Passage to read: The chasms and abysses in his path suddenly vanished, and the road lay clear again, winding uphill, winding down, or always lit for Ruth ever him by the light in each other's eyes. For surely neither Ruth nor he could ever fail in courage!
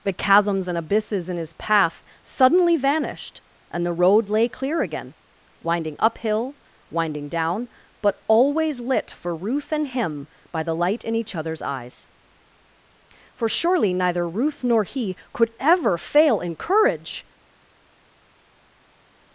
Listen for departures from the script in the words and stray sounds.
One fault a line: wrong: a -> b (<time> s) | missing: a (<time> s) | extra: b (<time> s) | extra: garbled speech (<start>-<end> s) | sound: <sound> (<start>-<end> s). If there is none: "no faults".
wrong: or -> but (8.0 s)
wrong: ever -> and (9.7 s)